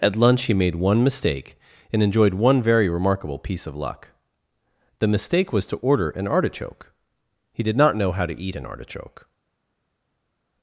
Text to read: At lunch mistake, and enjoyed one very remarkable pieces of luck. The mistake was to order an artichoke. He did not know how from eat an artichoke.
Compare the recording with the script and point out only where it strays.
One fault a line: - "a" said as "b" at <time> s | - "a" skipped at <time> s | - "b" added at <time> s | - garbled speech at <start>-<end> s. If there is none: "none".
- "he made one" added at 0.4 s
- "pieces" said as "piece" at 3.4 s
- "from" said as "to" at 8.2 s